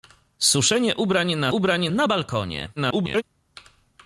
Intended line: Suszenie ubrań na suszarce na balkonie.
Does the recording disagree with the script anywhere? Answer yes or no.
yes